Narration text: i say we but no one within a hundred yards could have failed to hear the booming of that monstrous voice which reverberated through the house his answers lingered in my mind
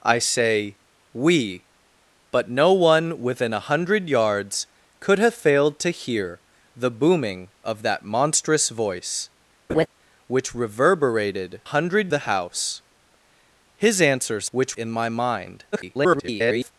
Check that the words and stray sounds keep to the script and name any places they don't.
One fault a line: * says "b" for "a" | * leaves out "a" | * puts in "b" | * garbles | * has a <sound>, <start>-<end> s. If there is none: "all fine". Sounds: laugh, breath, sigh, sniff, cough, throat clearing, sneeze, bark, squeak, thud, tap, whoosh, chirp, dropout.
* has a laugh, 9.7-9.9 s
* says "hundred" for "through"
* says "which" for "lingered"
* garbles